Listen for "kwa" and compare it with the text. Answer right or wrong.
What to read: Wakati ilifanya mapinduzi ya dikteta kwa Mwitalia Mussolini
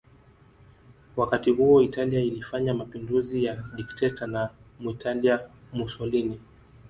wrong